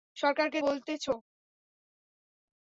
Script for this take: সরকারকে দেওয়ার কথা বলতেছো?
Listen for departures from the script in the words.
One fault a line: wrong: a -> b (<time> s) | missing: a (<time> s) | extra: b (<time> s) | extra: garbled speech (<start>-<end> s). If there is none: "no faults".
missing: দেওয়ার কথা (0.6 s)